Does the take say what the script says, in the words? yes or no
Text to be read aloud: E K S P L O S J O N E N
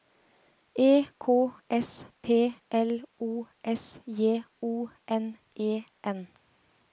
yes